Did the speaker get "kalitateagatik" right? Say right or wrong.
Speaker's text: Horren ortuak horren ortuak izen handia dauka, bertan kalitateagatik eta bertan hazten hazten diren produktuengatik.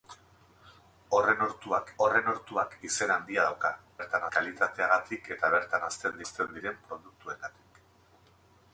right